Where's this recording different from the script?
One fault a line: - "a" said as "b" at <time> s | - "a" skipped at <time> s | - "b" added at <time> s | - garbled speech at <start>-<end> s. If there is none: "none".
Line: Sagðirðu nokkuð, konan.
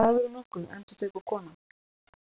- "endurtekur" added at 1.0 s